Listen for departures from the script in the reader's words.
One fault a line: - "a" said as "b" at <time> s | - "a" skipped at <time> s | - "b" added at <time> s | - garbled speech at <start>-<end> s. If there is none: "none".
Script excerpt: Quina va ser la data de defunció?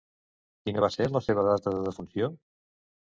- "seva" added at 1.3 s